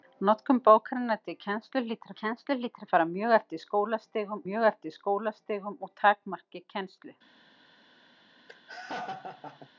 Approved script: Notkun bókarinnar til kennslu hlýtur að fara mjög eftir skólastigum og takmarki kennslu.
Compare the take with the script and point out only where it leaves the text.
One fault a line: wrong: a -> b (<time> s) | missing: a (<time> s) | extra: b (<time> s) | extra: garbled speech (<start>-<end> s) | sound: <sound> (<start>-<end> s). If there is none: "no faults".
extra: kennslu hlýtur (2.2 s)
extra: mjög eftir skólastigum (4.4 s)
sound: laugh (8.5-9.7 s)